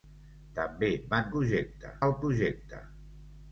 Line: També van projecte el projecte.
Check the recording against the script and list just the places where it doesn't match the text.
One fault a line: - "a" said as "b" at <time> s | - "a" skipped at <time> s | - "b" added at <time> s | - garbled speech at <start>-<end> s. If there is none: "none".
none